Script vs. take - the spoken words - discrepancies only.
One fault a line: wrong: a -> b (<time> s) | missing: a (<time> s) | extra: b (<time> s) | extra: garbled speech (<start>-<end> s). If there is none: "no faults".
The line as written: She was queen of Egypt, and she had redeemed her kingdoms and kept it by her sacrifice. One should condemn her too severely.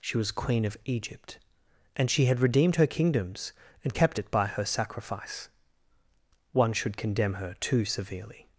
no faults